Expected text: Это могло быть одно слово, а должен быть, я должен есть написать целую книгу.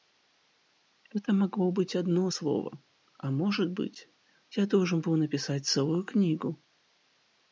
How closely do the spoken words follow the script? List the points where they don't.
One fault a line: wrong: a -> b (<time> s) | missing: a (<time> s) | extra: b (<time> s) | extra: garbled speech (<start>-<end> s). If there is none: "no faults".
wrong: должен -> может (3.3 s)
wrong: есть -> был (5.0 s)